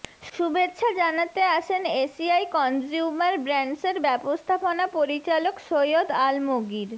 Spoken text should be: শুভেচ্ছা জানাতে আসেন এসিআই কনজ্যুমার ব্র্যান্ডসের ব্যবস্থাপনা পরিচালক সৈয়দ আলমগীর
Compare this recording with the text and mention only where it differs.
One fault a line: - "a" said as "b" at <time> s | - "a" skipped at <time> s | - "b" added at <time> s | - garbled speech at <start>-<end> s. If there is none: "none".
none